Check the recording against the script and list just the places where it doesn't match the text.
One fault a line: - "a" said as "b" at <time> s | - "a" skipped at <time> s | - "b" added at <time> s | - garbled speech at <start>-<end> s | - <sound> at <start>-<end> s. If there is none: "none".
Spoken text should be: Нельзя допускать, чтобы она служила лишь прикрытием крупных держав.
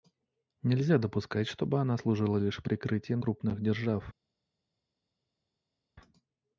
none